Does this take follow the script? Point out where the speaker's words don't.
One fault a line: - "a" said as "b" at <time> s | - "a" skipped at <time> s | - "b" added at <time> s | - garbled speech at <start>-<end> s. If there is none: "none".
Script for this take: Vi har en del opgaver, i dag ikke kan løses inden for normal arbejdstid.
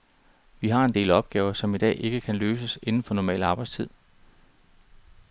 - "som" added at 1.5 s